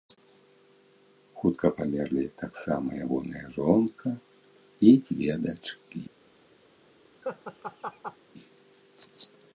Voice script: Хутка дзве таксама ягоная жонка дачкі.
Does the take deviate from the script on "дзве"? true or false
true